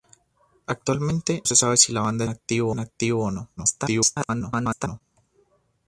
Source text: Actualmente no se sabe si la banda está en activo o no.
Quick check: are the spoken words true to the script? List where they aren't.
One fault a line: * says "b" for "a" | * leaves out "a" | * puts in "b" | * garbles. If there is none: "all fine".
* leaves out "no"
* says "activo" for "está"
* garbles